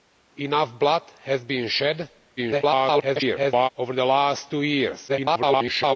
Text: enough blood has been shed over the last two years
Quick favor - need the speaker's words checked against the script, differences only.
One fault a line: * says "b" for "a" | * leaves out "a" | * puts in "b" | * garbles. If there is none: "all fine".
* garbles
* garbles